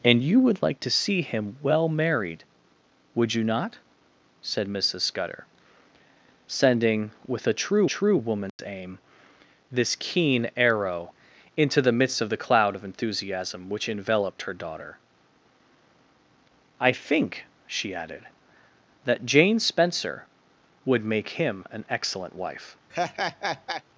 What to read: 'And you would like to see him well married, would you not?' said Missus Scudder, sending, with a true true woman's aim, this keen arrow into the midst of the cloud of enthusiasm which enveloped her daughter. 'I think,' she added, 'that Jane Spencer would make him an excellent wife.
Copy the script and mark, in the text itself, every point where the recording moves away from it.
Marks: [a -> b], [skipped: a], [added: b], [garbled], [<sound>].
'And you would like to see him well married, would you not?' said Missus Scudder, sending, with a true true woman's [dropout] aim, this keen arrow into the midst of the cloud of enthusiasm which enveloped her daughter. 'I think,' she added, 'that Jane Spencer would make him an excellent wife. [laugh]